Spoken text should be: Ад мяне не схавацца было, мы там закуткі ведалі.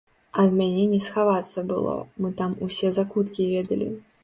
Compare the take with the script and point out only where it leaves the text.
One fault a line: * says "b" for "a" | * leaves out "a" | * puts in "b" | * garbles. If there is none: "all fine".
* puts in "усе"